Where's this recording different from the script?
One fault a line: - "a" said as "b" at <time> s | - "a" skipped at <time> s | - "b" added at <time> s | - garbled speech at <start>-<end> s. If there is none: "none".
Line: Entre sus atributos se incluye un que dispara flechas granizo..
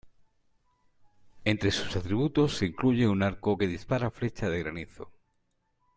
- "arco" added at 3.2 s
- "de" added at 4.5 s